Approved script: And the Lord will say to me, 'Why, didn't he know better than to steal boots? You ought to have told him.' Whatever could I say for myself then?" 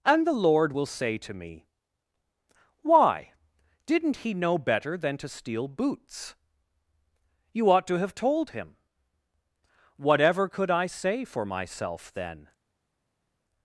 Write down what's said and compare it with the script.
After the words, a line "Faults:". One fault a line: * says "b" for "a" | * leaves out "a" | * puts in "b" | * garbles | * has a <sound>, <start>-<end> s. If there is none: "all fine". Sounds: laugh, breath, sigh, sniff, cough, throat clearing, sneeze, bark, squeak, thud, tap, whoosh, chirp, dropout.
And the Lord will say to me, 'Why, didn't he know better than to steal boots? You ought to have told him.' Whatever could I say for myself then?"
Faults:
all fine